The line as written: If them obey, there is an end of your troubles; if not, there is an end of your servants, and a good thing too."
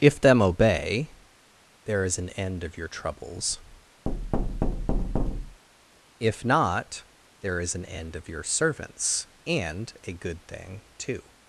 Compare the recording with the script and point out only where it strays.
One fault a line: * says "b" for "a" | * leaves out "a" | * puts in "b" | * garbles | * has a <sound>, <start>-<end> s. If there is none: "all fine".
* has a thud, 4.1-5.6 s